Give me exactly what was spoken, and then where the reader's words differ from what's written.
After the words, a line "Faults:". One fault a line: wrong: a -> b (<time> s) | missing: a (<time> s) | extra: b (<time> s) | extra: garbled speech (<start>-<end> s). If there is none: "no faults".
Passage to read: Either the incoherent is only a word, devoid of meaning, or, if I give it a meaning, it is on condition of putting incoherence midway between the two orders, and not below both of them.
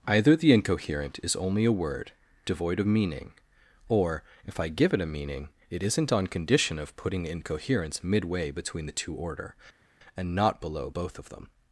Either the incoherent is only a word, devoid of meaning, or, if I give it a meaning, it isn't on condition of putting incoherence midway between the two order, and not below both of them.
Faults:
wrong: is -> isn't (5.8 s)
wrong: orders -> order (9.1 s)